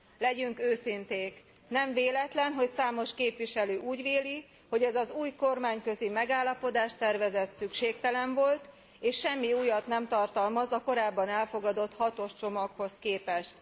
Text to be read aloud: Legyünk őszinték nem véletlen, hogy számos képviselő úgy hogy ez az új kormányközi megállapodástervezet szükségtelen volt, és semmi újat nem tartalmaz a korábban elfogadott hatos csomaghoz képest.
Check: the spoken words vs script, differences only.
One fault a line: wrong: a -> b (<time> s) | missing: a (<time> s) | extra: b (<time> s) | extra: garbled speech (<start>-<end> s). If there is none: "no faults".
extra: véli (4.0 s)